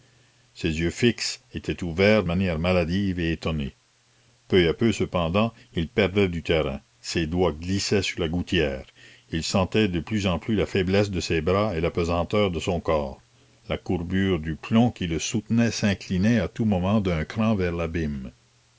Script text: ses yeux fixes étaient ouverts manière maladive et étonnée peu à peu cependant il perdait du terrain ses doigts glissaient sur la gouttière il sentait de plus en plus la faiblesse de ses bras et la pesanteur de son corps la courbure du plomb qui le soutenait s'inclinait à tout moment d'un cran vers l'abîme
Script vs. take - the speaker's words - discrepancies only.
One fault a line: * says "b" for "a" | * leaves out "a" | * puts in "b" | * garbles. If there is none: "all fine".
all fine